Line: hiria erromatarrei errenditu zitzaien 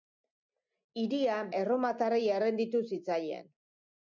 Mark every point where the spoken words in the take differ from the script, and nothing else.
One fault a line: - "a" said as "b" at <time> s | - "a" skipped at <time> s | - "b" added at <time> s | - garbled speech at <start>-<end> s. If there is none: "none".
none